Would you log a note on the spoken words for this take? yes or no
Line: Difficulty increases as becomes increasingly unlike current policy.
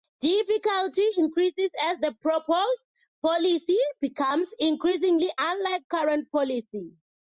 yes